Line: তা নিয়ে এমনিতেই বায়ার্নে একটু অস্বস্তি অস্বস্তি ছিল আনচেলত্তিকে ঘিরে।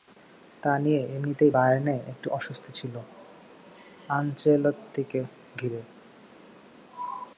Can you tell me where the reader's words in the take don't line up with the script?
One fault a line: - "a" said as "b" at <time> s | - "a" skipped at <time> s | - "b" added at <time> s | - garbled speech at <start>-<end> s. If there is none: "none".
- "অস্বস্তি" skipped at 2.7 s